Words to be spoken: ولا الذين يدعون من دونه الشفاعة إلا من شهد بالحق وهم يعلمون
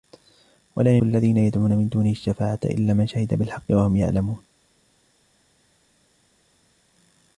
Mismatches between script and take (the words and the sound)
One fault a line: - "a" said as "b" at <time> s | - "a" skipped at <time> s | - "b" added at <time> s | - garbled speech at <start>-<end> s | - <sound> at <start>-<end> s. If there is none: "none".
none